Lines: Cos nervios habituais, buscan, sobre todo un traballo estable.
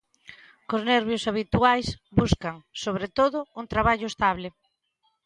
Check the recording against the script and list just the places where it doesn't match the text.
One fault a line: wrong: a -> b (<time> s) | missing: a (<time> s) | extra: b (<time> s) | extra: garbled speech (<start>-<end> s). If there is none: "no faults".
no faults